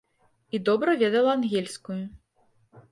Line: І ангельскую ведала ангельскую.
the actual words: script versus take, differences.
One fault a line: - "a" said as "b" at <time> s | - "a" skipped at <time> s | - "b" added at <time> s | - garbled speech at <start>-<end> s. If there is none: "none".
- "ангельскую" said as "добра" at 0.7 s